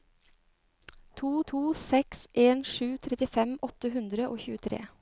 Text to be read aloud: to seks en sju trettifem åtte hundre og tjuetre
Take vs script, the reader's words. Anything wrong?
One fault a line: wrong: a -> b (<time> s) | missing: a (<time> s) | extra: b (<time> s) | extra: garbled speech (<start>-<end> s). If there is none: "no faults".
extra: to (1.5 s)